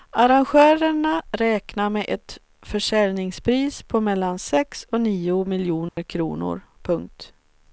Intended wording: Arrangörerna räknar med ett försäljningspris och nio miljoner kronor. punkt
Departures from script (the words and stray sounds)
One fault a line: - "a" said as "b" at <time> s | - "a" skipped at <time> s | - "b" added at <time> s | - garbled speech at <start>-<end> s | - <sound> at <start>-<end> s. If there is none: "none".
- "på mellan sex" added at 3.8 s
- dropout at 5.9-6.0 s